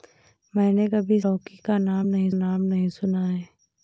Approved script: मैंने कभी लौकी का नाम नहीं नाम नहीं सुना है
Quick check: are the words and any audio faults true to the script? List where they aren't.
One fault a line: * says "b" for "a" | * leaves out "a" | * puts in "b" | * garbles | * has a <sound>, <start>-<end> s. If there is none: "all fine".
all fine